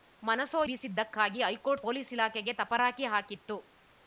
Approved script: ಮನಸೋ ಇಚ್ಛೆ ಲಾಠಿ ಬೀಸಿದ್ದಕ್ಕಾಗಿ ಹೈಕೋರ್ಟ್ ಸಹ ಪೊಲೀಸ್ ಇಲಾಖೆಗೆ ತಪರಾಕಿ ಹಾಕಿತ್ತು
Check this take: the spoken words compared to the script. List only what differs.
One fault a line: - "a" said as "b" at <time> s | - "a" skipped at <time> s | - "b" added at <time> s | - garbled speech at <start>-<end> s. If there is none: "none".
- "ಇಚ್ಛೆ ಲಾಠಿ" skipped at 0.6 s
- "ಸಹ" skipped at 1.9 s